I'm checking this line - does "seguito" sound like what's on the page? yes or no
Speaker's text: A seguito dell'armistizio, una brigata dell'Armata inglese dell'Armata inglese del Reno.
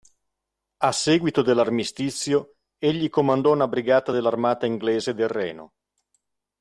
yes